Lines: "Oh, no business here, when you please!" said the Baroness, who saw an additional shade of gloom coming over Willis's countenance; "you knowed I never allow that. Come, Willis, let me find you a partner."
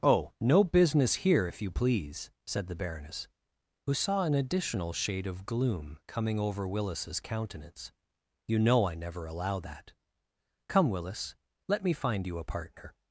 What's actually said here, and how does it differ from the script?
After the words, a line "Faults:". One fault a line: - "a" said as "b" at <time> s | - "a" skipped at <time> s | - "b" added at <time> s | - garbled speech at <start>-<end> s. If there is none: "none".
"Oh, no business here, if you please!" said the Baroness, who saw an additional shade of gloom coming over Willis's countenance; "you know I never allow that. Come, Willis, let me find you a partner."
Faults:
- "when" said as "if" at 1.5 s
- "knowed" said as "know" at 8.6 s